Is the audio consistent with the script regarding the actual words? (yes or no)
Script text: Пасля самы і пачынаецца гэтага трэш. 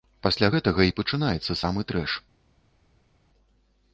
no